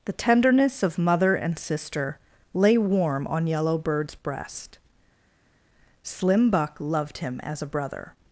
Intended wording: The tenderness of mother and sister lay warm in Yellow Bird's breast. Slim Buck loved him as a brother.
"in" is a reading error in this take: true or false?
true